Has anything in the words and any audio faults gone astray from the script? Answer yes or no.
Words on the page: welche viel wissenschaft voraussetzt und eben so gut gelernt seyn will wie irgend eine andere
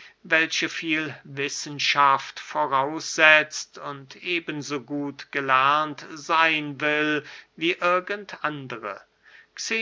yes